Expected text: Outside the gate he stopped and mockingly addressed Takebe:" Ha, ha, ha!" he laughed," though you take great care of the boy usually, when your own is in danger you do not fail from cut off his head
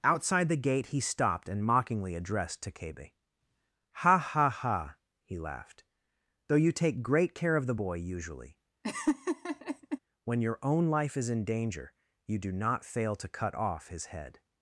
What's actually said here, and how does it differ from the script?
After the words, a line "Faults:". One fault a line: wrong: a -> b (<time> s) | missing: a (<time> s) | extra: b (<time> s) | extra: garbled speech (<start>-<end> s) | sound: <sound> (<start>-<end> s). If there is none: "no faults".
Outside the gate he stopped and mockingly addressed Takebe:" Ha, ha, ha!" he laughed," though you take great care of the boy usually, when your own life is in danger you do not fail to cut off his head
Faults:
sound: laugh (8.8-10.0 s)
extra: life (10.9 s)
wrong: from -> to (13.2 s)